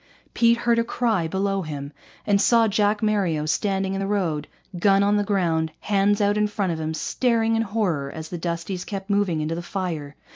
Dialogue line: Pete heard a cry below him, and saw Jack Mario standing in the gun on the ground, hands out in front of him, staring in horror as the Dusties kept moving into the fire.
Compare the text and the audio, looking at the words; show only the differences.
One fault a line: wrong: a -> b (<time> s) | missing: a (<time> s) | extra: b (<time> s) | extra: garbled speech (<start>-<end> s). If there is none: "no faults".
extra: road (4.1 s)